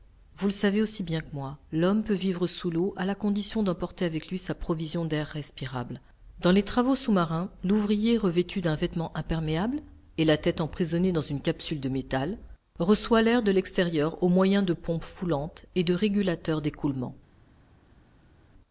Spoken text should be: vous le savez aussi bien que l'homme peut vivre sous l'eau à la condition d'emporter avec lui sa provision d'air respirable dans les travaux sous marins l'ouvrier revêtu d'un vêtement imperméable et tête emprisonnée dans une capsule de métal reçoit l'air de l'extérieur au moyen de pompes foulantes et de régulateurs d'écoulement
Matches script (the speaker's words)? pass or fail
fail